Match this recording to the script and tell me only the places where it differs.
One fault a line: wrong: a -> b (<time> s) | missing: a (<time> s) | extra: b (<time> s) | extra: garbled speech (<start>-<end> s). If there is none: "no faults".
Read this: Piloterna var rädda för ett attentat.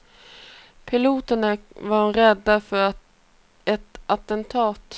no faults